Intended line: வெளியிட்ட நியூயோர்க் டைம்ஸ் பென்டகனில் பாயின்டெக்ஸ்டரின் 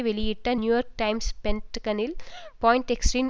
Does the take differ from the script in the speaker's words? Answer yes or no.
no